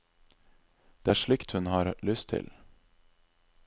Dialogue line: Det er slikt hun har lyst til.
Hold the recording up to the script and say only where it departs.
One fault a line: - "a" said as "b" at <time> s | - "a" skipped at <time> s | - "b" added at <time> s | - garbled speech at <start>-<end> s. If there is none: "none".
none